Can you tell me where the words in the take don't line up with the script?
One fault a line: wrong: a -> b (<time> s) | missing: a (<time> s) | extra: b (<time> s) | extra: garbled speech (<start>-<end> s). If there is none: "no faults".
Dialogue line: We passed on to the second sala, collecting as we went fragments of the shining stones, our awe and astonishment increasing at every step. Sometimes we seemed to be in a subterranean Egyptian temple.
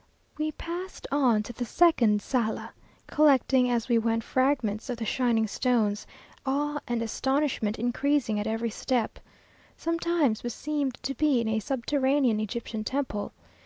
missing: our (6.1 s)